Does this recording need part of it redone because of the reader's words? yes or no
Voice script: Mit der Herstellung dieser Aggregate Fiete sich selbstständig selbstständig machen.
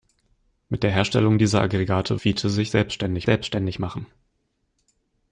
no